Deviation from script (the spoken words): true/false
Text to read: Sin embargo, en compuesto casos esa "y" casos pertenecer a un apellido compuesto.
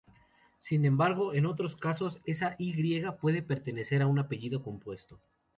true